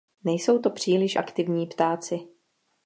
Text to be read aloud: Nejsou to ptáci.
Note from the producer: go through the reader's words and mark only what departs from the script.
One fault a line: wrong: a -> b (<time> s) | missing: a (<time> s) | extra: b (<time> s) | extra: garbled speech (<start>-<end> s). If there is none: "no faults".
extra: příliš aktivní (0.7 s)